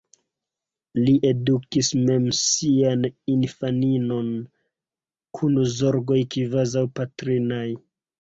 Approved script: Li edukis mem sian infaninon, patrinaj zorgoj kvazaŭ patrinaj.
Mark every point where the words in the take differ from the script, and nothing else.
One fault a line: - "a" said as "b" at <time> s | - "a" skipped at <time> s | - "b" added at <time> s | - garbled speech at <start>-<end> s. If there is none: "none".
- "patrinaj" said as "kun" at 5.4 s